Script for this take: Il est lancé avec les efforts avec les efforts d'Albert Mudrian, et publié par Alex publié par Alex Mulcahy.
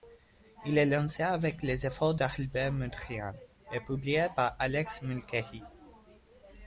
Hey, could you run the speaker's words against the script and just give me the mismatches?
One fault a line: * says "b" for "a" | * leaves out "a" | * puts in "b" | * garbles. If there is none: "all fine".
* leaves out "avec les efforts"
* leaves out "publié par Alex"